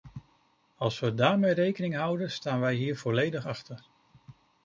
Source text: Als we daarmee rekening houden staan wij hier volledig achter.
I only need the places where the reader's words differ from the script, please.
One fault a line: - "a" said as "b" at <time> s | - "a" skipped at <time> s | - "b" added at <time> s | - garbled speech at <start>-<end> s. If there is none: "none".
none